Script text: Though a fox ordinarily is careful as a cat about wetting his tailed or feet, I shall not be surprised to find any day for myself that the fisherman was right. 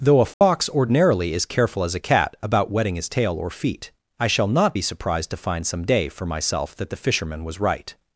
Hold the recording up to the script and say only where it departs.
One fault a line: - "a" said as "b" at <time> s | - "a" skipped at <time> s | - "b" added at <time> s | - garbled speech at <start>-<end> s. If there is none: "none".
- "tailed" said as "tail" at 3.1 s
- "any" said as "some" at 5.6 s